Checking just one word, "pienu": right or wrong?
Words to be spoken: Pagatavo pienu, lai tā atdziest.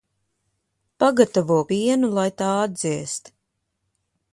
right